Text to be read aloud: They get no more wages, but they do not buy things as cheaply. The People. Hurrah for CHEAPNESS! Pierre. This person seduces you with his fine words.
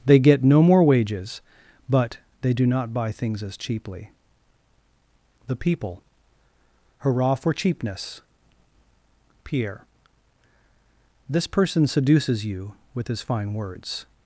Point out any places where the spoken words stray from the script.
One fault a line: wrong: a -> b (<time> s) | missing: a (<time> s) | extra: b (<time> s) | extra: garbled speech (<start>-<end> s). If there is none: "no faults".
no faults